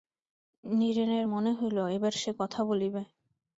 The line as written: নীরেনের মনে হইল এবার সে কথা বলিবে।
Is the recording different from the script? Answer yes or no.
no